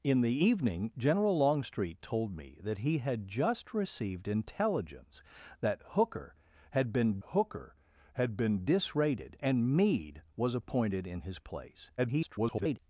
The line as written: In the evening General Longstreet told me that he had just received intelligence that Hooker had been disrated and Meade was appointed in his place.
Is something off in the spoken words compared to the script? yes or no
yes